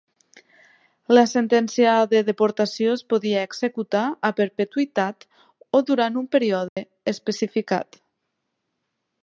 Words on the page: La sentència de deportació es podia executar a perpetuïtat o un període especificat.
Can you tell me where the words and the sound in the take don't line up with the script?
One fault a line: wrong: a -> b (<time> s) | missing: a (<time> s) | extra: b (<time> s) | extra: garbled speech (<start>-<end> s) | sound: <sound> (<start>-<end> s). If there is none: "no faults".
extra: durant (5.9 s)
sound: dropout (6.7-6.8 s)